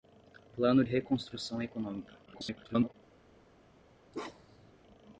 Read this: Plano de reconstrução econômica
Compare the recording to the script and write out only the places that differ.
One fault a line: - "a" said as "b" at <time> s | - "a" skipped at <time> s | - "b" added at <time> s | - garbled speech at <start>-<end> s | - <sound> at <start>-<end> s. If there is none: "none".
- "de" skipped at 0.8 s
- garbled speech at 2.3-2.9 s
- bark at 4.1-4.7 s